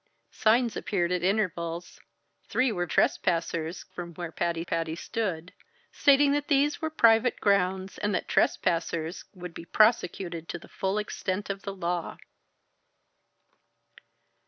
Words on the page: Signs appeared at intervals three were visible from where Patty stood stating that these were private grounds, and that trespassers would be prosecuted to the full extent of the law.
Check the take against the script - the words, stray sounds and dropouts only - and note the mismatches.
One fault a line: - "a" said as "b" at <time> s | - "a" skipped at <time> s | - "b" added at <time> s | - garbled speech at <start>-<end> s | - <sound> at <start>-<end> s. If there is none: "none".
- "visible" said as "trespassers" at 2.9 s
- "Patty" added at 4.6 s